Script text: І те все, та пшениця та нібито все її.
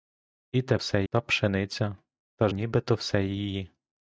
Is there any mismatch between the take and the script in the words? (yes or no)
no